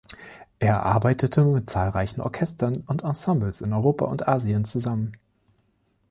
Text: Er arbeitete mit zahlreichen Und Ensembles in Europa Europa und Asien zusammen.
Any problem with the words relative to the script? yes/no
yes